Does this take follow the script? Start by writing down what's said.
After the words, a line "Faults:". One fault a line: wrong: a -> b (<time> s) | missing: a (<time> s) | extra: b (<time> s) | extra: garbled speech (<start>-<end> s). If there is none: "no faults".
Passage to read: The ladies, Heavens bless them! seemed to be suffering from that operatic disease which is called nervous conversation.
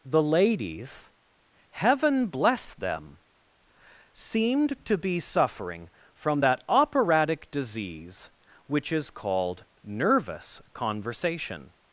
The ladies, Heaven bless them! seemed to be suffering from that operatic disease which is called nervous conversation.
Faults:
wrong: Heavens -> Heaven (1.7 s)